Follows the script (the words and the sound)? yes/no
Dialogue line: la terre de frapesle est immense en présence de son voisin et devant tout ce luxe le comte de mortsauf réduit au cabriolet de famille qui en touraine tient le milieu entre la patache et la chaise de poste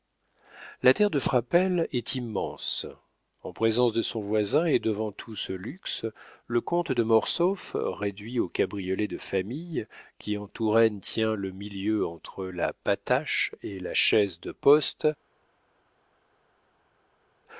yes